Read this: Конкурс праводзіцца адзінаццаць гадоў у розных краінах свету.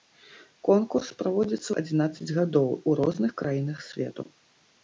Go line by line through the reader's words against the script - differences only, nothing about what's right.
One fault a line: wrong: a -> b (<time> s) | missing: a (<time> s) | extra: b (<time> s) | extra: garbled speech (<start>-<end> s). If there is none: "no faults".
no faults